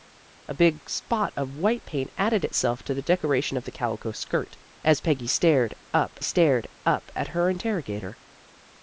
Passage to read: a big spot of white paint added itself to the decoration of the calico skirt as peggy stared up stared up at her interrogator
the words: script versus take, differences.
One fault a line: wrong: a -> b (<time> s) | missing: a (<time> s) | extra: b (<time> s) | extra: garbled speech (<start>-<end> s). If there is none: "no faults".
no faults